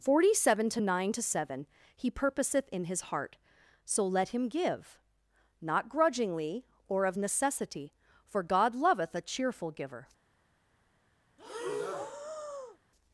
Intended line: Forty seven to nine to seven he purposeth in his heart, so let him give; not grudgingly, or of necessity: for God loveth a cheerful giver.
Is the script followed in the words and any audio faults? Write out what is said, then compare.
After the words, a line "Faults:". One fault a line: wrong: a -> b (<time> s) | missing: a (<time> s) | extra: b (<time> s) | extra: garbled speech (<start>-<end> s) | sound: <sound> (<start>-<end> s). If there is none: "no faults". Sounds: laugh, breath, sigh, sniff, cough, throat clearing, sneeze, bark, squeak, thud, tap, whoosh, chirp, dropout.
Forty seven to nine to seven he purposeth in his heart, so let him give; not grudgingly, or of necessity: for God loveth a cheerful giver.
Faults:
sound: breath (11.4-12.8 s)